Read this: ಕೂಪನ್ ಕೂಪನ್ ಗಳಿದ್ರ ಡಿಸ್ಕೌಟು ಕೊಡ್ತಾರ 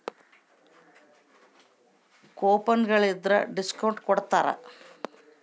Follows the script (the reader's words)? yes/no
no